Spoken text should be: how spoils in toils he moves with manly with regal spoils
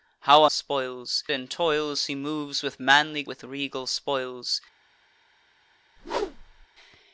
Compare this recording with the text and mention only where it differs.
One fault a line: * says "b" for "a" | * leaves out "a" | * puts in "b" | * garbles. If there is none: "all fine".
all fine